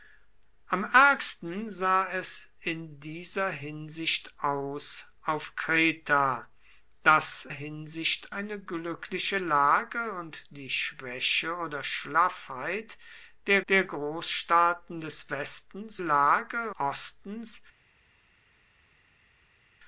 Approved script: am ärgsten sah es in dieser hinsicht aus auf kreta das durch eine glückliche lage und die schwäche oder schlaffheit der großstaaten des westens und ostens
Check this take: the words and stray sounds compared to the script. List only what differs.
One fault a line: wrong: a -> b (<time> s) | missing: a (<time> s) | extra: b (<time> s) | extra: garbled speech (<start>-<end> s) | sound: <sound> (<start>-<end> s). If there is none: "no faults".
wrong: durch -> hinsicht (7.5 s)
extra: der (13.7 s)
wrong: und -> lage (16.0 s)